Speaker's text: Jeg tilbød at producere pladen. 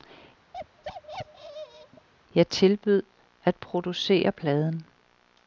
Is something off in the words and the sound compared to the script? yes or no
yes